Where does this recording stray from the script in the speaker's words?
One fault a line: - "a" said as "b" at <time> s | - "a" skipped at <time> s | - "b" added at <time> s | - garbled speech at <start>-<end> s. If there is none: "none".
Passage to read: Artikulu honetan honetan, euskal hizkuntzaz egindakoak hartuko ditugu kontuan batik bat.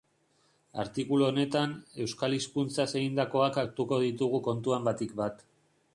- "honetan" skipped at 1.8 s